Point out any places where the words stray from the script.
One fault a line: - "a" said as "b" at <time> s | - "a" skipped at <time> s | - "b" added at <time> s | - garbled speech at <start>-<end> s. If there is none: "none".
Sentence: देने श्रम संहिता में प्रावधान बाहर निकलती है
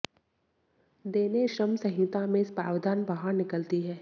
none